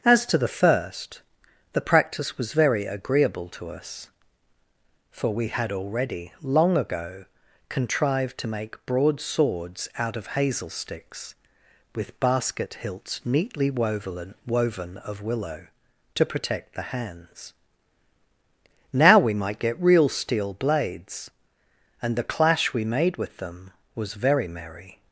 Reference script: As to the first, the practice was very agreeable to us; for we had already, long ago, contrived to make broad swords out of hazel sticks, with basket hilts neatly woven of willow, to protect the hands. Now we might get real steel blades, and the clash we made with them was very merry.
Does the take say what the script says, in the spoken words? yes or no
no